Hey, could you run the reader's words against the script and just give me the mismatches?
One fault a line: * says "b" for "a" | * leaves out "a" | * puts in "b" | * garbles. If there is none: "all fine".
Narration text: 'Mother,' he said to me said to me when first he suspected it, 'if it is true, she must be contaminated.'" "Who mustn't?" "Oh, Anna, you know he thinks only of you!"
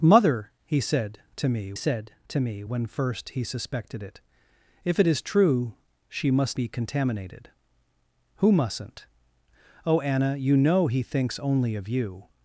all fine